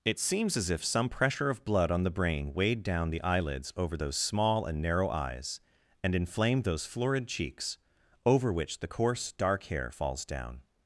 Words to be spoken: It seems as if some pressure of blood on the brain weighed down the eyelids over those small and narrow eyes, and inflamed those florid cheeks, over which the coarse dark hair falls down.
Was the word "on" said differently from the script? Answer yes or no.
no